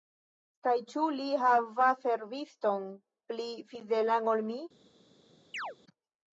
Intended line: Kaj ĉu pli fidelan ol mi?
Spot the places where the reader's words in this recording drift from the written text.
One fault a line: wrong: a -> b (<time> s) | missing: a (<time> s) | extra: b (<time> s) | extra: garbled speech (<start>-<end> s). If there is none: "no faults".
extra: li havas serviston (1.2 s)